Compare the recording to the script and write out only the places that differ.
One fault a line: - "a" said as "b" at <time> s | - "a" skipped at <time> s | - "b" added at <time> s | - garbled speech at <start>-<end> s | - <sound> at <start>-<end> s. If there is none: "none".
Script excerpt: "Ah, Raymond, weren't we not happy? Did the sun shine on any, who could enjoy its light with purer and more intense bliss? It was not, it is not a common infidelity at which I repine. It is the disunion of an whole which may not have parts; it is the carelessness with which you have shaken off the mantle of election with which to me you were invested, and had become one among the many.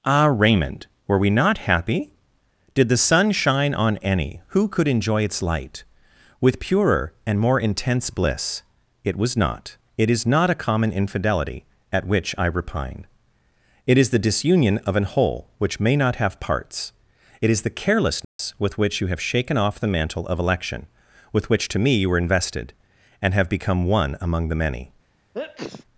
- "weren't" said as "were" at 1.1 s
- dropout at 18.2-18.4 s
- "had" said as "have" at 23.3 s
- sneeze at 25.3-25.8 s